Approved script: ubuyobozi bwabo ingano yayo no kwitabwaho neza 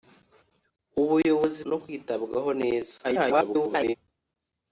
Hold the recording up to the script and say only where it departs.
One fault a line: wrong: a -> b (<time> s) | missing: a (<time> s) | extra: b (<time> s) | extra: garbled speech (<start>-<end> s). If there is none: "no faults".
missing: bwabo ingano yayo (1.6 s)
extra: garbled speech (3.0-4.0 s)